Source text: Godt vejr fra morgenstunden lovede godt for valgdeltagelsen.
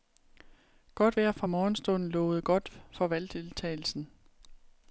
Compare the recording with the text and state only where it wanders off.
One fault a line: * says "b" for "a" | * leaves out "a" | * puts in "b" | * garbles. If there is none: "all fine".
all fine